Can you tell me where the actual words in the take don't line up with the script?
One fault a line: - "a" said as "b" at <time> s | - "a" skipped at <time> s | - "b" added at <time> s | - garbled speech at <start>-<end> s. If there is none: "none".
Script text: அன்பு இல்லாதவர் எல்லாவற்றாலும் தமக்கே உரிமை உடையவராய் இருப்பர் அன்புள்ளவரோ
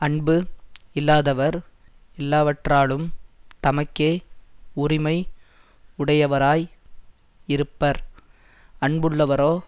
none